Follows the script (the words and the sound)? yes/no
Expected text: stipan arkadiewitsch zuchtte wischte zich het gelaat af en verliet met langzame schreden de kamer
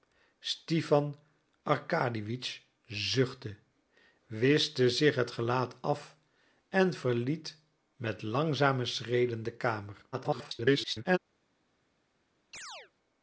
no